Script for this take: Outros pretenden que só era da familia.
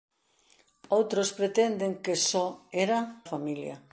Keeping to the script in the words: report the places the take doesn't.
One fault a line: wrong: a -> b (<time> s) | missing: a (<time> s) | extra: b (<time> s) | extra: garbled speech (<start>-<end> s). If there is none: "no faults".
missing: da (3.0 s)